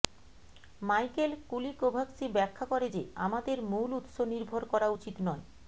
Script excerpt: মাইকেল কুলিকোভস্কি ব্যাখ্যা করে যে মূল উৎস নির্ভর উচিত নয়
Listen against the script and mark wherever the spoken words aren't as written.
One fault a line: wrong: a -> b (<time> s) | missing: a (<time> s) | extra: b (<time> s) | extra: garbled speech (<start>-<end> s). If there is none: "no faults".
extra: আমাদের (3.3 s)
extra: করা (4.7 s)